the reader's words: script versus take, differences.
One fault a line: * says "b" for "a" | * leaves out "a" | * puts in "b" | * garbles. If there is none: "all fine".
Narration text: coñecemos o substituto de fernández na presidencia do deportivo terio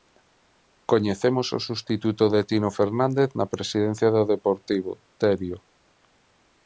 * puts in "tino"